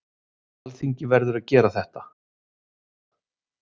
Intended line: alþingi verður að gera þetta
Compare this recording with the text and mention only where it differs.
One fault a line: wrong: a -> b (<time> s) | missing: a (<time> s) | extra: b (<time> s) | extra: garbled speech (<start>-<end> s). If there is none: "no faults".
no faults